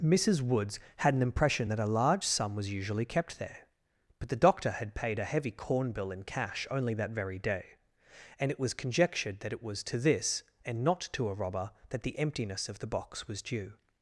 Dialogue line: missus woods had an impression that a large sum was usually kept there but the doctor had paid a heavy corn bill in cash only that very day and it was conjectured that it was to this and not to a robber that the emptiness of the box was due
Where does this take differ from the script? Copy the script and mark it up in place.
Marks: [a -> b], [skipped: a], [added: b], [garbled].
missus woods had an impression that a large sum was usually kept there but the doctor had paid a heavy corn bill in cash only that very day and it was conjectured that it was to this and not to a robber that the emptiness of the box was due